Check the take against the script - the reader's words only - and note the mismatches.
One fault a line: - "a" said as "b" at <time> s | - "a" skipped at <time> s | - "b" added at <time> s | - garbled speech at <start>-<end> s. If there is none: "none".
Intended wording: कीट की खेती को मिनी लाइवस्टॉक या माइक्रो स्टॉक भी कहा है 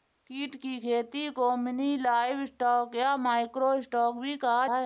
none